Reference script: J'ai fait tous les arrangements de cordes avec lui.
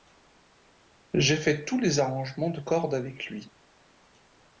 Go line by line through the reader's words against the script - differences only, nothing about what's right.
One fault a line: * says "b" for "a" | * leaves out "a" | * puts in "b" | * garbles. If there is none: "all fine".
all fine